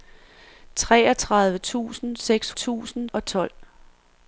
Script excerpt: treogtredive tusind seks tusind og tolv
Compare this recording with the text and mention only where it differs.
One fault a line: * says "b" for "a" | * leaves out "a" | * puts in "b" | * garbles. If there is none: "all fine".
all fine